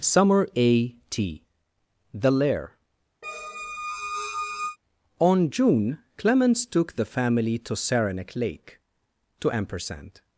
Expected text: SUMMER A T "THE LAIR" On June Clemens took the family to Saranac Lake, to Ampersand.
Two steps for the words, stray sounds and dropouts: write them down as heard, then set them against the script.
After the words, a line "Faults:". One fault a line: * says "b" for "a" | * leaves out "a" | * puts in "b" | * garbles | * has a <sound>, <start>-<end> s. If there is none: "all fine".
SUMMER A T "THE LAIR" On June Clemens took the family to Saranac Lake, to Ampersand.
Faults:
* has a squeak, 3.2-4.8 s